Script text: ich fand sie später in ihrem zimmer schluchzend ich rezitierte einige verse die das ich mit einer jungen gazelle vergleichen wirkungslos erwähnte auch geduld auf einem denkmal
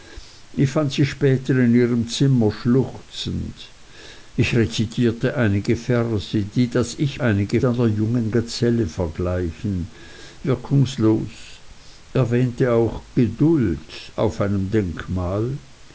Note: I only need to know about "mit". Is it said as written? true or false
false